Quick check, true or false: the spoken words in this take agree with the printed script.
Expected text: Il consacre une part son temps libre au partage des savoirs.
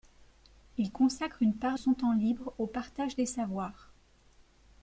true